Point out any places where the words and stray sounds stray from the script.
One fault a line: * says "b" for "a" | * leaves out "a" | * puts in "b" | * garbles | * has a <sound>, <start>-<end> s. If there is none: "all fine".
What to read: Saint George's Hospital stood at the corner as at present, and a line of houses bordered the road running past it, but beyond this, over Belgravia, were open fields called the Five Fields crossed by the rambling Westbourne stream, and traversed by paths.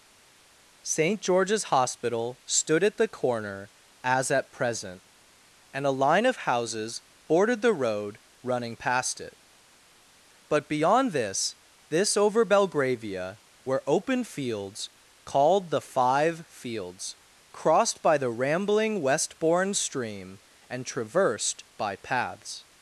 * puts in "this"